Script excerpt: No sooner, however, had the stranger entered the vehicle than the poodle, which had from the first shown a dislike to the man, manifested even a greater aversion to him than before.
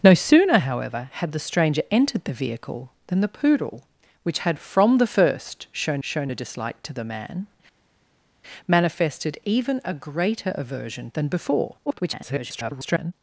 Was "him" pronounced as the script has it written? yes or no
no